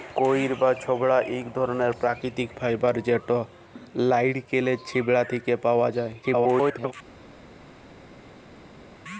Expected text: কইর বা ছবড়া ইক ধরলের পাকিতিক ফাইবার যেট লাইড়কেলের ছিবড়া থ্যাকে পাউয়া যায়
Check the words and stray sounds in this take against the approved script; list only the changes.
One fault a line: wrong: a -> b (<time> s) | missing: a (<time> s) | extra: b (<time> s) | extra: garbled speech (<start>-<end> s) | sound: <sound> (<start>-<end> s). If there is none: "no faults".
extra: garbled speech (6.2-6.9 s)